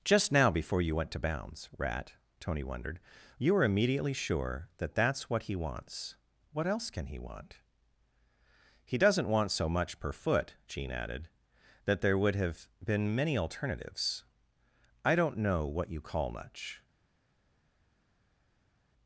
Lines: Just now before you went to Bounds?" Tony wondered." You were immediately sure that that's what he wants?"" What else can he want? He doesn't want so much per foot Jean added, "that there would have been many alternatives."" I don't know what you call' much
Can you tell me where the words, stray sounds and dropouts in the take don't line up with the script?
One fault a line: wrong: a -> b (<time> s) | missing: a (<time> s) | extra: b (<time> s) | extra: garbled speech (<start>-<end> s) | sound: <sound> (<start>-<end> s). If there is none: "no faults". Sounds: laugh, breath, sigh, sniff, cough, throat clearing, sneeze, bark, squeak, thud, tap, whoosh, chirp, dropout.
extra: rat (1.8 s)